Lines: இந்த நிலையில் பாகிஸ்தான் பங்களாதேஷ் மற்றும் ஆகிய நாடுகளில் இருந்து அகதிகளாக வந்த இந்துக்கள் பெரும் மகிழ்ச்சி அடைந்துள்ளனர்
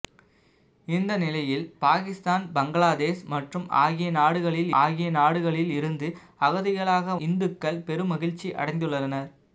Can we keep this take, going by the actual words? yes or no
no